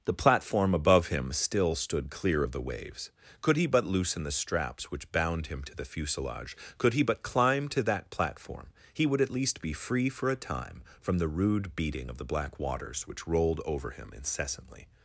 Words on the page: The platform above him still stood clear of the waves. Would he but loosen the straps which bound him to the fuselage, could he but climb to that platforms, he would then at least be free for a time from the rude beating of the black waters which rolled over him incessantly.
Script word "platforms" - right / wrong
wrong